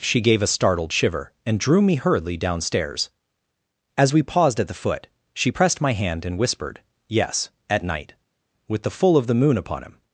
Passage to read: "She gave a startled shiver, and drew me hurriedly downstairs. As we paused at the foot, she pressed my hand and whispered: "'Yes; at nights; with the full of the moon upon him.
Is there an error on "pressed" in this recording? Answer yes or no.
no